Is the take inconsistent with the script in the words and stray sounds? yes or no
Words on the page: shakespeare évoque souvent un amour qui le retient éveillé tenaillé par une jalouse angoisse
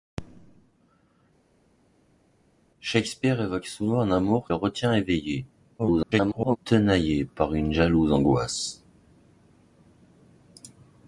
yes